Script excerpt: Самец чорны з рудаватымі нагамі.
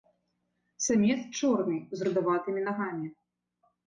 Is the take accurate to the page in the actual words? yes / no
yes